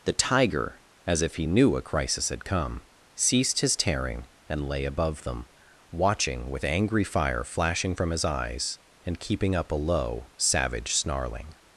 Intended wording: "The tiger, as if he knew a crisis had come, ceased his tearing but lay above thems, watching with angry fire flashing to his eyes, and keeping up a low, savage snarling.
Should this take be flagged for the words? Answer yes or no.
yes